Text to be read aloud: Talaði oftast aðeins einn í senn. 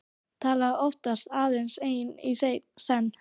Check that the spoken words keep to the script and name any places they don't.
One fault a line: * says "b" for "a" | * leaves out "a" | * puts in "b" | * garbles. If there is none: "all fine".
all fine